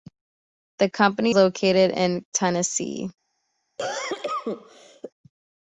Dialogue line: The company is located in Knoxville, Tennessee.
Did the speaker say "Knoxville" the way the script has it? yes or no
no